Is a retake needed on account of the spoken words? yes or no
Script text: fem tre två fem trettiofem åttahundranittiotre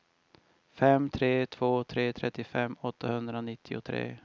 yes